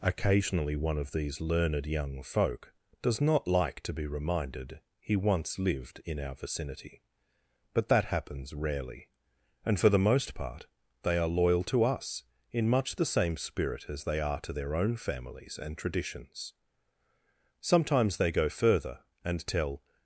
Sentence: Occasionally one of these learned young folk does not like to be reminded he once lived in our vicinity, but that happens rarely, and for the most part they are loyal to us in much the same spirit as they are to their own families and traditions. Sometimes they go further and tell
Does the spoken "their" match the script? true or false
true